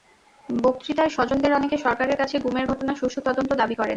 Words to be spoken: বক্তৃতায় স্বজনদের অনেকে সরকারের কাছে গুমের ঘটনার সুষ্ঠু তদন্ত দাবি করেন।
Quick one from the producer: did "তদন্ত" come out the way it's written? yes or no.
yes